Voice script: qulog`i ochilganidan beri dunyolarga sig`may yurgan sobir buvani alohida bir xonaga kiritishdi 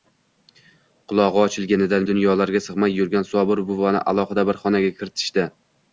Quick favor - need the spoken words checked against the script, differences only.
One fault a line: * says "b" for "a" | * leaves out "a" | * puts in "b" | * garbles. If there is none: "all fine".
* leaves out "beri"